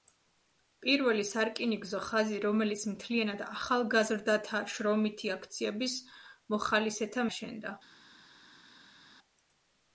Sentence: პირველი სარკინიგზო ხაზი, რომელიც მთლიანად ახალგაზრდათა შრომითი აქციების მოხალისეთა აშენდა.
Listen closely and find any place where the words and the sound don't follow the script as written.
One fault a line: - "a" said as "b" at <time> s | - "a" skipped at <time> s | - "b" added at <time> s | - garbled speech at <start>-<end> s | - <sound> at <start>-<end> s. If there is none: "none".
none